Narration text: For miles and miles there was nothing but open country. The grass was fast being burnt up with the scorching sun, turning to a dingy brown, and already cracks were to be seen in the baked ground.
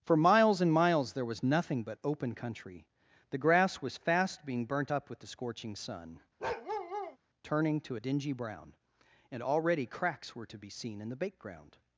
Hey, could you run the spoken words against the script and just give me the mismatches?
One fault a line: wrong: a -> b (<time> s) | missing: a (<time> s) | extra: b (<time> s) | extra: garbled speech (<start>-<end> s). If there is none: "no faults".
wrong: baked -> bake (11.2 s)